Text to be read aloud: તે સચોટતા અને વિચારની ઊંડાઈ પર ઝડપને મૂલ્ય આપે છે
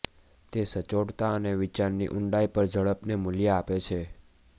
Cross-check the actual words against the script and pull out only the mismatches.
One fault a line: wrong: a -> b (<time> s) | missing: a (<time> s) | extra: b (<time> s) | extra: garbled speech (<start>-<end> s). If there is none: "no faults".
no faults